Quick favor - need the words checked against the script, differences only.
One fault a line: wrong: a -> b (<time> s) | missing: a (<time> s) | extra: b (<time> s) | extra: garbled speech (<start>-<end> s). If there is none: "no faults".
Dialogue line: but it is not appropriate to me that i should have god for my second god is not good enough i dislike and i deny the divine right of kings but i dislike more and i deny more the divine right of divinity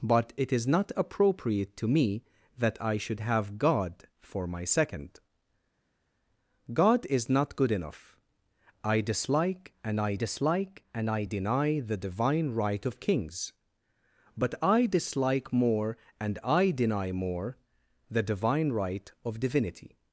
extra: dislike and i (10.1 s)